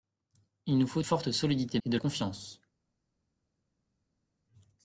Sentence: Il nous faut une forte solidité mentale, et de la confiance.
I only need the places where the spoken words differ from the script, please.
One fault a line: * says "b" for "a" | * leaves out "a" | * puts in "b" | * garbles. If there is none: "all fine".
* leaves out "une"
* leaves out "mentale"
* leaves out "la"